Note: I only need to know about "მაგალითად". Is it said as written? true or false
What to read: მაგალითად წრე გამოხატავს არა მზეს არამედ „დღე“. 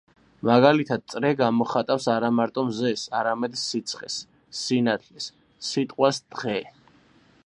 true